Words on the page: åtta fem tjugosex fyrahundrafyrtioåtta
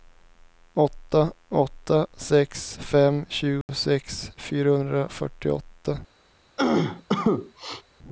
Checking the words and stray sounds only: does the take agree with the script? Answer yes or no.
no